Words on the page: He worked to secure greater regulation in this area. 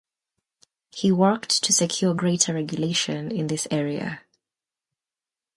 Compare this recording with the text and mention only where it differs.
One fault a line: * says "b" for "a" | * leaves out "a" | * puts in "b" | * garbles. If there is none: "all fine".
all fine